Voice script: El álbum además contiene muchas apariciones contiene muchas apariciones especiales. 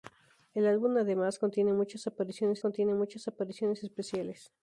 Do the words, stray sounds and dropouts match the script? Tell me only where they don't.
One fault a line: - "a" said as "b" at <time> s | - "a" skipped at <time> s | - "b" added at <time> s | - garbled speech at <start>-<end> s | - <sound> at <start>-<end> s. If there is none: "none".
none